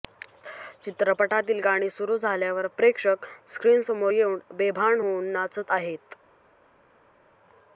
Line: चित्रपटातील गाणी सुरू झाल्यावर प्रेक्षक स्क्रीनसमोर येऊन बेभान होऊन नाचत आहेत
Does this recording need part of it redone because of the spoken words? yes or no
no